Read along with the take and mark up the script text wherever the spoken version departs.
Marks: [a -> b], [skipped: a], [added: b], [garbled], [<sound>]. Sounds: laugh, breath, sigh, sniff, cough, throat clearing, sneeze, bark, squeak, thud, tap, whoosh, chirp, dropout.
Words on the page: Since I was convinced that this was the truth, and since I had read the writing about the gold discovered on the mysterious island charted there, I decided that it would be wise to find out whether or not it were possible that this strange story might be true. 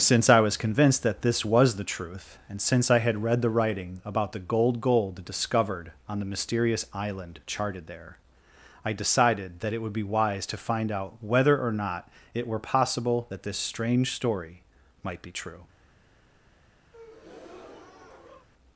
Since I was convinced that this was the truth, and since I had read the writing about the gold [added: gold] discovered on the mysterious island charted there, I decided that it would be wise to find out whether or not it were possible that this strange story might be true. [breath]